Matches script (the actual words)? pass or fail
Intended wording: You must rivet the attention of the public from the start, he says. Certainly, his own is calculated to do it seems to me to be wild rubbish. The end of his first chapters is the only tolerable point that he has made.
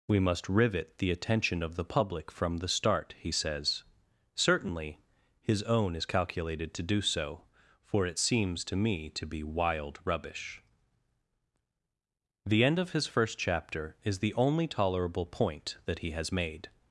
fail